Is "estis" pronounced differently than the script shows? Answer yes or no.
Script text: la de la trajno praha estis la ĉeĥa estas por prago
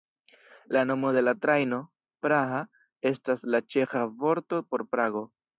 yes